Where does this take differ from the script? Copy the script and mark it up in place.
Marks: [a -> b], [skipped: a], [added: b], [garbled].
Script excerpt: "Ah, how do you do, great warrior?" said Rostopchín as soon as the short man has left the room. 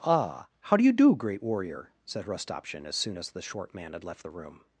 "Ah, how do you do, great warrior?" said Rostopchín as soon as the short man [has -> had] left the room.